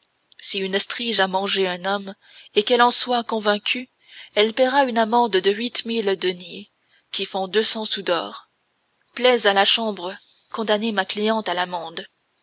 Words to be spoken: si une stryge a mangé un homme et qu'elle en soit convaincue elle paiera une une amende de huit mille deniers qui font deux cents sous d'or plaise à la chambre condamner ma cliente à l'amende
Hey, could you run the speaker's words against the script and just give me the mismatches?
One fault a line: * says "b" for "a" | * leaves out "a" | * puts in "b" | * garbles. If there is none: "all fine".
* leaves out "une"